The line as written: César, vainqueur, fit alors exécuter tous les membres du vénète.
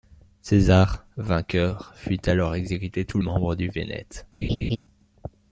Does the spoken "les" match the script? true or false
false